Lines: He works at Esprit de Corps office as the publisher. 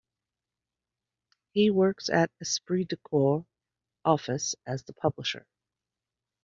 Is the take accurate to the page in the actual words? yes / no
yes